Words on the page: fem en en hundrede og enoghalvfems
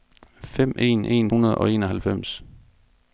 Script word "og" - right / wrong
right